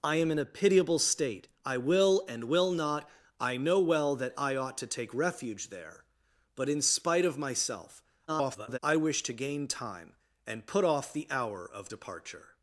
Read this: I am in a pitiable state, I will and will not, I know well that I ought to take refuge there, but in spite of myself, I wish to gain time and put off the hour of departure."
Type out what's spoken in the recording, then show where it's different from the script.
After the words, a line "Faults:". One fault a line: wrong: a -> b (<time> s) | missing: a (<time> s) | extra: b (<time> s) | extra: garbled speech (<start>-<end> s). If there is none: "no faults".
I am in a pitiable state, I will and will not, I know well that I ought to take refuge there, but in spite of myself, [garbled] I wish to gain time and put off the hour of departure."
Faults:
extra: garbled speech (8.3-8.8 s)